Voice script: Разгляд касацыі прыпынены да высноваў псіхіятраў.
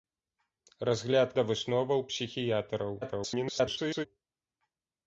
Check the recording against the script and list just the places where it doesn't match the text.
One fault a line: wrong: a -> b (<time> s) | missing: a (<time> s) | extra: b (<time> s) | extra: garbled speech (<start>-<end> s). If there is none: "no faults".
missing: касацыі прыпынены (1.4 s)
extra: garbled speech (3.0-4.1 s)